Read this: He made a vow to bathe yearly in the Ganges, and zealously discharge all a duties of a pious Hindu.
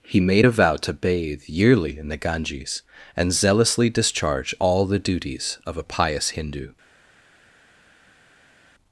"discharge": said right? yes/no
yes